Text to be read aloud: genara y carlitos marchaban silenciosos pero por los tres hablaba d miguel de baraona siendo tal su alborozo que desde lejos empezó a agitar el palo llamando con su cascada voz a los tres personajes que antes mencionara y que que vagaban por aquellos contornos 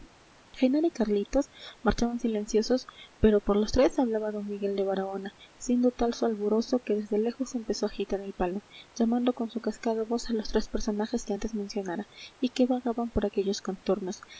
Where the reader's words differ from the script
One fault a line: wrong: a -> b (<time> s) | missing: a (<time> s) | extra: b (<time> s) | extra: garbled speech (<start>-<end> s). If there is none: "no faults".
missing: que (12.7 s)